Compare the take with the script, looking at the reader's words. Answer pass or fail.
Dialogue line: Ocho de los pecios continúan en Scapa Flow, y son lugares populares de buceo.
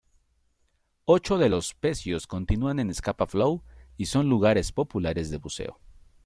pass